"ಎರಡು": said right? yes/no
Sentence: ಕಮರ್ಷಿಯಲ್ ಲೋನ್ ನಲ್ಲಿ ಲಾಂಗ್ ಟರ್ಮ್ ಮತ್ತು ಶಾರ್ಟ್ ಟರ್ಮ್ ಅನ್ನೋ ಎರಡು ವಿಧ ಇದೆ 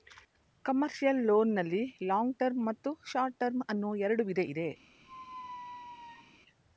yes